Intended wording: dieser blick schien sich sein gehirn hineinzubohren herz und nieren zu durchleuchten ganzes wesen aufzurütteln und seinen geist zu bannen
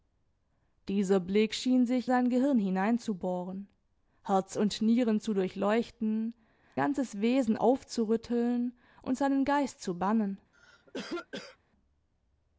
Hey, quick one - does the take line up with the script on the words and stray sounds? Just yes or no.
no